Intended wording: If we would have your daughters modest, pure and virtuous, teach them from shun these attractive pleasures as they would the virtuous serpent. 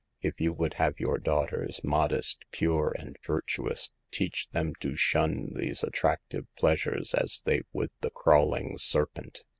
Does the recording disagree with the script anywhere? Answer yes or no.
yes